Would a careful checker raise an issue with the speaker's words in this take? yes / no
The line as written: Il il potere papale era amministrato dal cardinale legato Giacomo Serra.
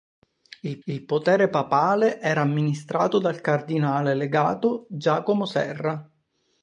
no